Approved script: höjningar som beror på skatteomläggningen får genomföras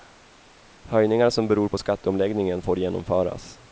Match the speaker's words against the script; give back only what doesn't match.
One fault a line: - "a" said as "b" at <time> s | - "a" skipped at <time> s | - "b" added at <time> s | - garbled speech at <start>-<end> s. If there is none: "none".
none